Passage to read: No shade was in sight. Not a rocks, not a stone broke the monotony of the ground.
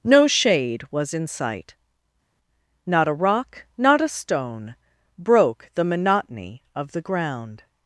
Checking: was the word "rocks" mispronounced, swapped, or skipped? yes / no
yes